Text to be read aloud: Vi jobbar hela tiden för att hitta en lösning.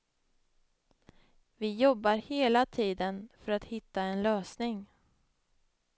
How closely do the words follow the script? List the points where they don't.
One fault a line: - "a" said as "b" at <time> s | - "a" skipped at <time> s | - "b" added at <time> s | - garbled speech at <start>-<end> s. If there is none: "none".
none